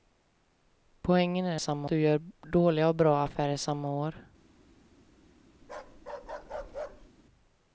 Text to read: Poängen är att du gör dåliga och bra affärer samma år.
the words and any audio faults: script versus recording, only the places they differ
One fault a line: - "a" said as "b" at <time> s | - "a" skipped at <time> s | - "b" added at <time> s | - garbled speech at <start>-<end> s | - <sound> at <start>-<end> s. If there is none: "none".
- "att" said as "samma" at 1.6 s
- bark at 5.6-7.1 s